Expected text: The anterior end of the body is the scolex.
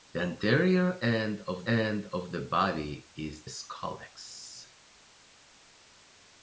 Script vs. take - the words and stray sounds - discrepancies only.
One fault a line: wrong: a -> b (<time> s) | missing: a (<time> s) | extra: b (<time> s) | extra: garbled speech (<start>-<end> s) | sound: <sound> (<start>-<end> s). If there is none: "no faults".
extra: end of (1.6 s)
missing: the (3.5 s)